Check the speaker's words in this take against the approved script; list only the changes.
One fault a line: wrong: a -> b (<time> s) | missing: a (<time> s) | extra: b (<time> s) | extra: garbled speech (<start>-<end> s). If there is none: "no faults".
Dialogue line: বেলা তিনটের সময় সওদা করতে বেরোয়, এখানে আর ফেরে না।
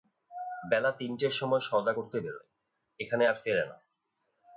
no faults